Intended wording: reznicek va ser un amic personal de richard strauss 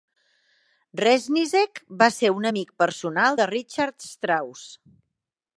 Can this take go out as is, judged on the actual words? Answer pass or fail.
pass